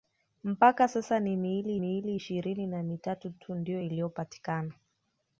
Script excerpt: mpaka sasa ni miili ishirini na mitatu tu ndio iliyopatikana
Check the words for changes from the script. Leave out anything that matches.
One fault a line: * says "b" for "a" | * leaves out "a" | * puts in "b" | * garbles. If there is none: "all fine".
* puts in "miili"